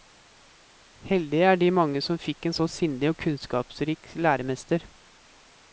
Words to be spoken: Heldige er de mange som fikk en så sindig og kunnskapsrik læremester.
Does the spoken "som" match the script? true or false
true